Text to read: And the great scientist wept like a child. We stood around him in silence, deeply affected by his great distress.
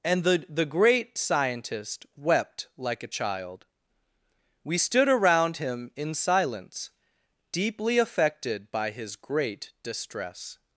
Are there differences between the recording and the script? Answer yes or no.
yes